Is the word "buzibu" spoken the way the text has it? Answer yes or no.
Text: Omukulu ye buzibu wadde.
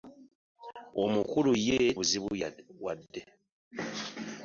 yes